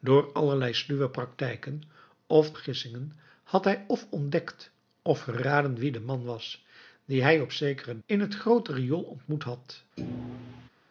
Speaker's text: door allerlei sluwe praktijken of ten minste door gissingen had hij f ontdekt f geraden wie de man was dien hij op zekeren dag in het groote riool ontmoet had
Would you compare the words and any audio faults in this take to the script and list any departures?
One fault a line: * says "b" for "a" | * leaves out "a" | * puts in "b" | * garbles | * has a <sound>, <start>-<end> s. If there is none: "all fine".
* leaves out "ten minste door"
* leaves out "dag"
* has a thud, 10.0-10.7 s